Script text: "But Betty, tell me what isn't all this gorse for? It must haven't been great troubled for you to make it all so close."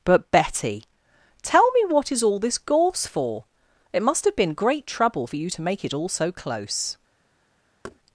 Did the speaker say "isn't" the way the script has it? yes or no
no